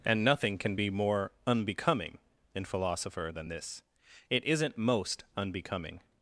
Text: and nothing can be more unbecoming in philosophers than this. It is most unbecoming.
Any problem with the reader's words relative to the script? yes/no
yes